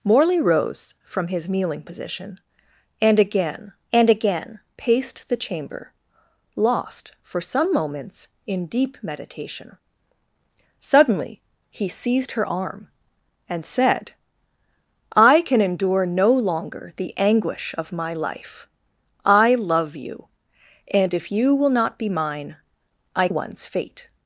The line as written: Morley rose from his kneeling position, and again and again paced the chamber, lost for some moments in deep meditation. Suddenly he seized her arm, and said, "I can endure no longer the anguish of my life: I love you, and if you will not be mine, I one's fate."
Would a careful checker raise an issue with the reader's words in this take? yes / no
no